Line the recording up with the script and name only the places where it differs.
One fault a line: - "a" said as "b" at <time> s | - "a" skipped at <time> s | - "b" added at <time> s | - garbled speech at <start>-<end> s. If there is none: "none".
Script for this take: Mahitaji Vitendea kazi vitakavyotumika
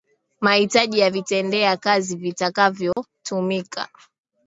- "ya" added at 1.0 s